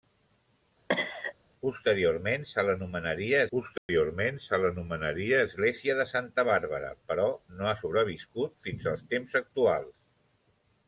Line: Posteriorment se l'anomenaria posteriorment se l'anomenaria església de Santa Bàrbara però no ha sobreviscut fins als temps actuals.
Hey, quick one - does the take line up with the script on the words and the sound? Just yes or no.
no